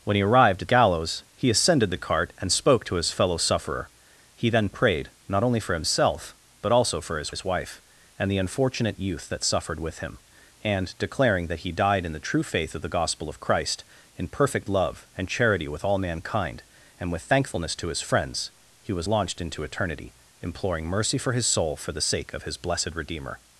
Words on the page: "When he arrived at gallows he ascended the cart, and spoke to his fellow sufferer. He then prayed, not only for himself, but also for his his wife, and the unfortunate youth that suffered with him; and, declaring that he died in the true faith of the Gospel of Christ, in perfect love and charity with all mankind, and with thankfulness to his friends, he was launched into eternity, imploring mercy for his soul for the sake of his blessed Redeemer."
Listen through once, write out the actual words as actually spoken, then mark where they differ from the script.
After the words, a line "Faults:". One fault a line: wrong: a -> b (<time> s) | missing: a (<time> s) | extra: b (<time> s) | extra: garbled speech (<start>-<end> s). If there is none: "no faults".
"When he arrived at gallows he ascended the cart, and spoke to his fellow sufferer. He then prayed, not only for himself, but also for his his wife, and the unfortunate youth that suffered with him; and, declaring that he died in the true faith of the Gospel of Christ, in perfect love and charity with all mankind, and with thankfulness to his friends, he was launched into eternity, imploring mercy for his soul for the sake of his blessed Redeemer."
Faults:
no faults